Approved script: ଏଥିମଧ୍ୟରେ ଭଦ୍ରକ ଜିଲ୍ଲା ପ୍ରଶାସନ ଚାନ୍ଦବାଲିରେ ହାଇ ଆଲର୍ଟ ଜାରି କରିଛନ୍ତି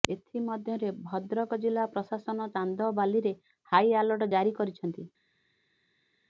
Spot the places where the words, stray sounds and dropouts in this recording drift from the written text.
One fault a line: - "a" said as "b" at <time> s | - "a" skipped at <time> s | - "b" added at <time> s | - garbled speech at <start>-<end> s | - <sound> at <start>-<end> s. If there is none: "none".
none